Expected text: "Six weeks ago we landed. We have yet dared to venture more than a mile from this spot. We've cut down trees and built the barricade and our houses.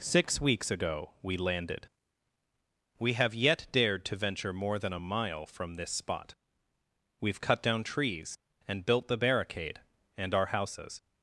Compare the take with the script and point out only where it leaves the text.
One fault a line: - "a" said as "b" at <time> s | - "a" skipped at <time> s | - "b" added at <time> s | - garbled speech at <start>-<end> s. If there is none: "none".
none